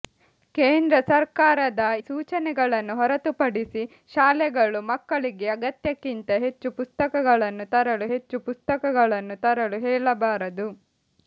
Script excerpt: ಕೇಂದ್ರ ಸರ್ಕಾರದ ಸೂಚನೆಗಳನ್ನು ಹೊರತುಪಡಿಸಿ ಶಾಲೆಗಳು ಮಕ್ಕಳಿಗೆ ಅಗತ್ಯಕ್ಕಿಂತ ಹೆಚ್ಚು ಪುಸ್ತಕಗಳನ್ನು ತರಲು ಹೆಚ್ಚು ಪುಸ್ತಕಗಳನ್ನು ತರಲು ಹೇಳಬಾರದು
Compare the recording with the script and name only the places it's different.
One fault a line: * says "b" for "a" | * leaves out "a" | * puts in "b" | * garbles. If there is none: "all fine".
all fine